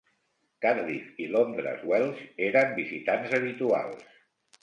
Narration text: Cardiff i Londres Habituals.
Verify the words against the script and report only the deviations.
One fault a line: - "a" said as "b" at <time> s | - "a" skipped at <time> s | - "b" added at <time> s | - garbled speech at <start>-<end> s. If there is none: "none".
- "Welsh eren visitants" added at 1.9 s